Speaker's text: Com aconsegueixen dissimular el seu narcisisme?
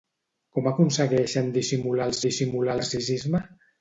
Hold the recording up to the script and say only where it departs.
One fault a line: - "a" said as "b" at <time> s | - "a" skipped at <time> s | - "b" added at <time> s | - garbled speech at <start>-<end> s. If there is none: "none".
- "seu" said as "dissimular" at 2.3 s